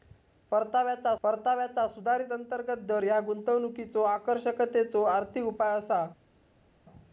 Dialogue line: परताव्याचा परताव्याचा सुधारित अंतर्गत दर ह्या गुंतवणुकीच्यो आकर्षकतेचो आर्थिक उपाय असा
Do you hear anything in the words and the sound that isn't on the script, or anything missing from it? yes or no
no